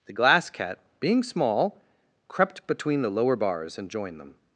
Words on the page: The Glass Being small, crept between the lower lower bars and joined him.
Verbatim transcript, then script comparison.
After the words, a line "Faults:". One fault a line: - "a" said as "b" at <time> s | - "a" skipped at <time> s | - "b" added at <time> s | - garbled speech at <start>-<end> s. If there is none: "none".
The Glass Cat, being small, crept between the lower bars and joined them.
Faults:
- "Cat" added at 0.5 s
- "lower" skipped at 3.3 s
- "him" said as "them" at 4.2 s